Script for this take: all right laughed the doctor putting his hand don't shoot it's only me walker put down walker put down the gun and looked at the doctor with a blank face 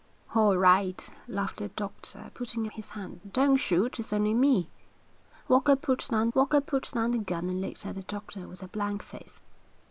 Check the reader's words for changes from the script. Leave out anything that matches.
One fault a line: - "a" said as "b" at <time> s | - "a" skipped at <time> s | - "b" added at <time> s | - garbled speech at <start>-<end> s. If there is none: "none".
none